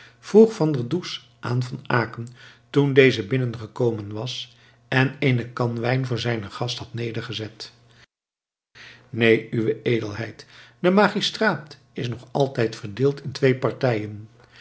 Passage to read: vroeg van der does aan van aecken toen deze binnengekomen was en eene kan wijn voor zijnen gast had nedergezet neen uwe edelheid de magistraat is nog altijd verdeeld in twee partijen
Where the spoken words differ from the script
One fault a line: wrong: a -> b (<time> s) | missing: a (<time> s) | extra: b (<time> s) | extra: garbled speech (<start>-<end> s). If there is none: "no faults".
no faults